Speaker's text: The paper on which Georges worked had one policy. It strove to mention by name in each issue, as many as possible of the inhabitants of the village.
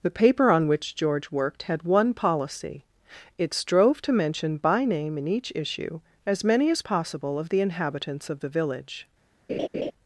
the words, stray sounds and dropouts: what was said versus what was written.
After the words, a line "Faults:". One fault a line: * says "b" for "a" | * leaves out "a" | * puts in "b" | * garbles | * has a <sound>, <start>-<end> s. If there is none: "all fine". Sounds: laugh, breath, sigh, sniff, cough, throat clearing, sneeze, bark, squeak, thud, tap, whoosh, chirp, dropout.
The paper on which George worked had one policy. It strove to mention by name in each issue, as many as possible of the inhabitants of the village.
Faults:
* says "George" for "Georges"
* has a laugh, 9.5-9.9 s